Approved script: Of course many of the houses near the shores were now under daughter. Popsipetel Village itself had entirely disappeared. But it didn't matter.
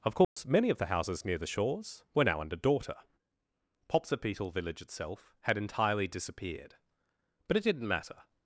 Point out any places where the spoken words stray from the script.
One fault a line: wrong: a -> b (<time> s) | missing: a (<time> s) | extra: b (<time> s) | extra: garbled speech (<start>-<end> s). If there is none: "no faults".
no faults